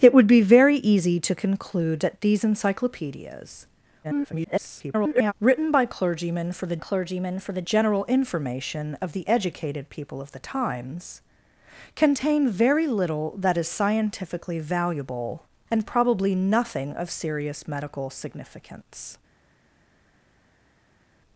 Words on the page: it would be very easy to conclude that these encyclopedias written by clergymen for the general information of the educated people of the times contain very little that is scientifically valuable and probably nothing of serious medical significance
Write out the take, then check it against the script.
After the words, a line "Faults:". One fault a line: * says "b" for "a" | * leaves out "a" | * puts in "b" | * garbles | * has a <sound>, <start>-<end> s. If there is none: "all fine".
it would be very easy to conclude that these encyclopedias [garbled] written by clergymen for the clergymen for the general information of the educated people of the times contain very little that is scientifically valuable and probably nothing of serious medical significance
Faults:
* garbles
* puts in "clergymen for the"